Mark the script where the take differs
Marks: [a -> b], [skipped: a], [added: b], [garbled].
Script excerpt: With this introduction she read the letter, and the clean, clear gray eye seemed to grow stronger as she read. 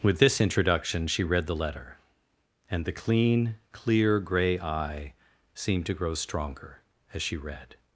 With this introduction she read the letter, and the clean, clear gray eye seemed to grow stronger as she read.